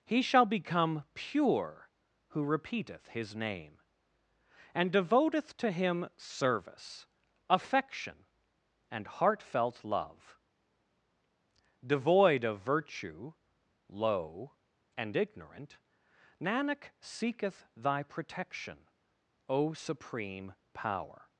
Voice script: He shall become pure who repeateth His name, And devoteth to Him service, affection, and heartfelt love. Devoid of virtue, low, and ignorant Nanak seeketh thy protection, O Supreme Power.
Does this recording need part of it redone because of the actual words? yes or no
no